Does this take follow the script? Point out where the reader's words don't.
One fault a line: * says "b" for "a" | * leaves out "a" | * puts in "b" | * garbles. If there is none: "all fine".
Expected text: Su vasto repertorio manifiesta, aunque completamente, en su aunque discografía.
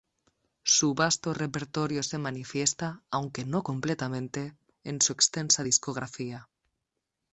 * puts in "se"
* puts in "no"
* says "extensa" for "aunque"